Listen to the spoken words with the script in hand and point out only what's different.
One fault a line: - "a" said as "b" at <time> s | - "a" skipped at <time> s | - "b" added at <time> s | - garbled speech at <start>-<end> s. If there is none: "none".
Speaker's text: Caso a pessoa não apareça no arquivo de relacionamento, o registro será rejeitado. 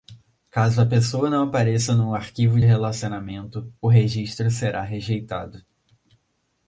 - "de" skipped at 2.6 s